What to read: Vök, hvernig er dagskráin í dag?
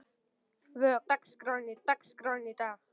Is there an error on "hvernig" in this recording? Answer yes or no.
yes